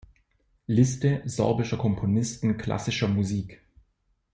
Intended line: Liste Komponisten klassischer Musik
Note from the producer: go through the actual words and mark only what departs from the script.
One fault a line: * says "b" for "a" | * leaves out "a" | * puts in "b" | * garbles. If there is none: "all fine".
* puts in "sorbischer"